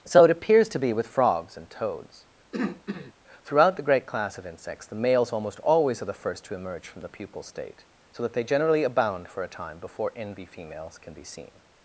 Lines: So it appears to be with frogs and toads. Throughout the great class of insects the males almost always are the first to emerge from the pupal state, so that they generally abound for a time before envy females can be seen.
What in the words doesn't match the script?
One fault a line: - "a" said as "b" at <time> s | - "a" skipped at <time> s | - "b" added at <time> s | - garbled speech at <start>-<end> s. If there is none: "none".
none